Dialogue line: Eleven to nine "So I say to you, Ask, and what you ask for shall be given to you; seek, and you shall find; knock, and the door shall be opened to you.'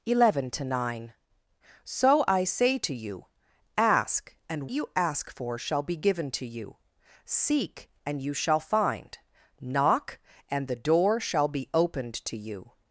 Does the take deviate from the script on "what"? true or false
true